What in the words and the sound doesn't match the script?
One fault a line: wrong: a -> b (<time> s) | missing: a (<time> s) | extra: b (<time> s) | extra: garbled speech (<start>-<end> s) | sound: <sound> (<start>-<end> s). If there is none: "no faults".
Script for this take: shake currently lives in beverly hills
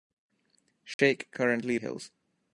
sound: dropout (0.9-1.0 s)
missing: lives in beverly (1.8 s)